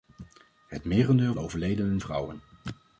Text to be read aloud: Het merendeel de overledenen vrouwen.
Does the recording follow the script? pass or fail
pass